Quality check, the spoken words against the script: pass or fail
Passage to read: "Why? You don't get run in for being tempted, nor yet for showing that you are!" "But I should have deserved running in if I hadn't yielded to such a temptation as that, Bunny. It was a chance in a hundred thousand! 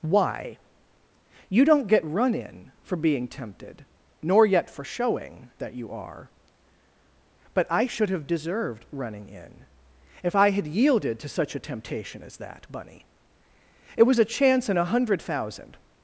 fail